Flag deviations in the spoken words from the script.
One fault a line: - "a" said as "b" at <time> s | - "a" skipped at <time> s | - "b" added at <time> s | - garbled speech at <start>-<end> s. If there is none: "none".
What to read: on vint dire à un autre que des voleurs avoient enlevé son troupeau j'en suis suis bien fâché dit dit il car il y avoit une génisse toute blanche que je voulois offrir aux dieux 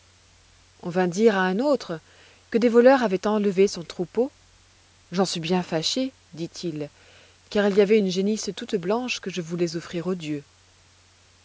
- "suis" skipped at 5.4 s
- "dit" skipped at 6.5 s